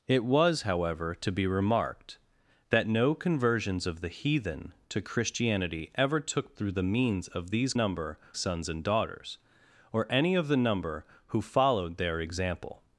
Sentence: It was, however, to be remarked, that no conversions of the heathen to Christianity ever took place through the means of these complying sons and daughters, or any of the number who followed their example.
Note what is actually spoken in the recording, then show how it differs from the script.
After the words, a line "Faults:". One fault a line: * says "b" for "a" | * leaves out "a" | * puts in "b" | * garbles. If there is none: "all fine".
It was, however, to be remarked, that no conversions of the heathen to Christianity ever took through the means of these number sons and daughters, or any of the number who followed their example.
Faults:
* leaves out "place"
* says "number" for "complying"